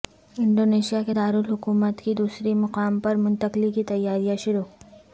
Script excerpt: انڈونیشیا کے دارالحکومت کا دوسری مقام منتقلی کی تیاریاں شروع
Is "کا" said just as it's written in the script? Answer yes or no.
no